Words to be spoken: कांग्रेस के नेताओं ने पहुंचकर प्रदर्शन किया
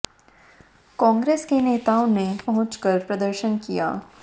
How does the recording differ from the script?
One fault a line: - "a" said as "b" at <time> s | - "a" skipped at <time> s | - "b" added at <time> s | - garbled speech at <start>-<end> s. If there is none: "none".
none